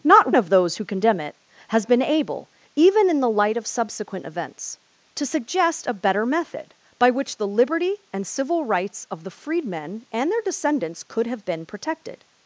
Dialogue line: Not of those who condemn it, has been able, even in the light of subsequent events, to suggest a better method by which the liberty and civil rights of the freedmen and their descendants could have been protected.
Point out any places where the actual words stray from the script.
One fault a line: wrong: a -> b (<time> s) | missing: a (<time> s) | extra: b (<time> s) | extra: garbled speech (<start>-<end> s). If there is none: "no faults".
no faults